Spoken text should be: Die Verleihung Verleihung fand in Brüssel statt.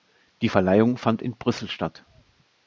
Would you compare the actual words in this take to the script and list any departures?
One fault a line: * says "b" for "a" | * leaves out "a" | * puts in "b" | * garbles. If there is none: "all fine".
* leaves out "Verleihung"